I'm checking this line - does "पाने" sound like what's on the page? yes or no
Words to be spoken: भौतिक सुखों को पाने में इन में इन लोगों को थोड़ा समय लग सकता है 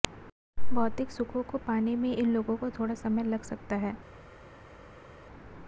yes